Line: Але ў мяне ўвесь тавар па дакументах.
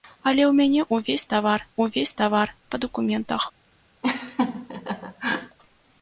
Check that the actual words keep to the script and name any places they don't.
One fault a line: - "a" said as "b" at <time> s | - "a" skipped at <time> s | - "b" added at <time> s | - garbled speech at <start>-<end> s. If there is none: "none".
- "ўвесь тавар" added at 1.8 s